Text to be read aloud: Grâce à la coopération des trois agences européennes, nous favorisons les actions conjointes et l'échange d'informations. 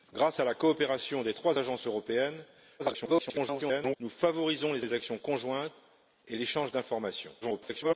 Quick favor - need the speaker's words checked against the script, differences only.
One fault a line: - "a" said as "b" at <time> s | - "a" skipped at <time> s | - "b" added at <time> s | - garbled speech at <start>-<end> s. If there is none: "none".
- garbled speech at 2.8-4.0 s
- "les" added at 4.8 s
- garbled speech at 7.4-7.9 s